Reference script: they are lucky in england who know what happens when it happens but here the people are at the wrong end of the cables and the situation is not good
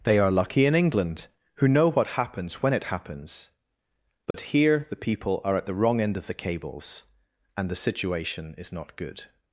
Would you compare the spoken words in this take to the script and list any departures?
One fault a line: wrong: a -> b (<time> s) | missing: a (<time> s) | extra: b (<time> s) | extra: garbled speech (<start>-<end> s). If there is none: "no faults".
no faults